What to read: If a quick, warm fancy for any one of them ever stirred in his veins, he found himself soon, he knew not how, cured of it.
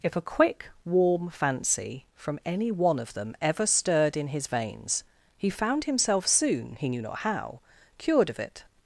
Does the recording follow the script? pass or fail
fail